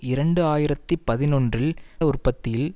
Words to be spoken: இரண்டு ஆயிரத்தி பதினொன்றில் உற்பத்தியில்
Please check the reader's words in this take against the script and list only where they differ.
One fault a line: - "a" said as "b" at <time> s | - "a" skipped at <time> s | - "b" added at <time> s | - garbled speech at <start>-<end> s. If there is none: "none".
none